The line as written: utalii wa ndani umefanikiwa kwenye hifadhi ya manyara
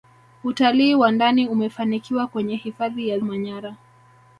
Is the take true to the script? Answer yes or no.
yes